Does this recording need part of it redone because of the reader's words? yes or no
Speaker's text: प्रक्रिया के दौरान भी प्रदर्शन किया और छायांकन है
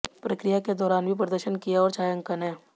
no